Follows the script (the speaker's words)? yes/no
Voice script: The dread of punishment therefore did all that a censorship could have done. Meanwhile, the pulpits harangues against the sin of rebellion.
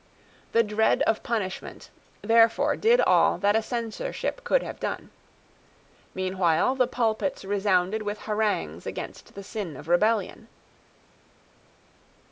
no